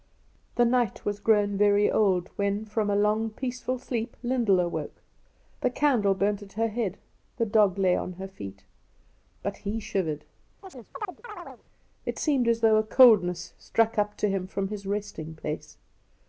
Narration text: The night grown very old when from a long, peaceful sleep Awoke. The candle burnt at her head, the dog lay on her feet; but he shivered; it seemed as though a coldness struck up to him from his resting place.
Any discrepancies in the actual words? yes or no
yes